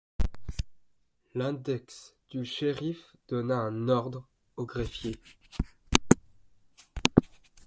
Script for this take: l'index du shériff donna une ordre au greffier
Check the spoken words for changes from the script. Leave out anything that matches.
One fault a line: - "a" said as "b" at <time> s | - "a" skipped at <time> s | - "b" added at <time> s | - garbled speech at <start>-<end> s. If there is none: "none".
- "une" said as "un" at 3.5 s